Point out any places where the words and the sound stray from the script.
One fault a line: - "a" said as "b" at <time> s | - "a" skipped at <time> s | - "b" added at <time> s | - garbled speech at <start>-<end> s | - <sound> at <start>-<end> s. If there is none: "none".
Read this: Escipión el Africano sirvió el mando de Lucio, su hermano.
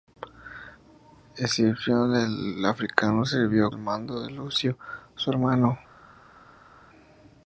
none